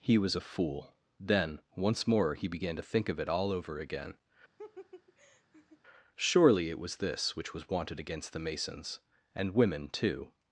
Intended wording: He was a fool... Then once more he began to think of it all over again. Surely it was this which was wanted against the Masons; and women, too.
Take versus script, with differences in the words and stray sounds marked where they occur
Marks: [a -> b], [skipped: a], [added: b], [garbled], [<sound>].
He was a fool... Then once more he began to think of it all over again. [laugh] Surely it was this which was wanted against the Masons; and women, too.